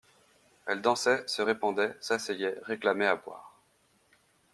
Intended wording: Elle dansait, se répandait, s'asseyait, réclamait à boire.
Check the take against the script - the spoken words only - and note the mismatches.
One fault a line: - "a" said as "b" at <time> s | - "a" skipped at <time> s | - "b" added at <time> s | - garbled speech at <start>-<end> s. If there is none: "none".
none